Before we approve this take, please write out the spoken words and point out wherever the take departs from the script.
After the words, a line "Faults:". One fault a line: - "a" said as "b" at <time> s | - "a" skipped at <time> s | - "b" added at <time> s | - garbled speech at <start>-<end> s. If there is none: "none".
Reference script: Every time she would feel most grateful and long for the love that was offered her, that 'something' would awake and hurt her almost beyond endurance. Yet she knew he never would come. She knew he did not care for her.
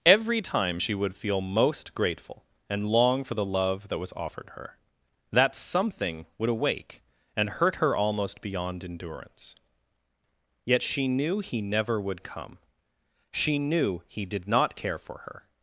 Every time she would feel most grateful and long for the love that was offered her, that 'something' would awake and hurt her almost beyond endurance. Yet she knew he never would come. She knew he did not care for her.
Faults:
none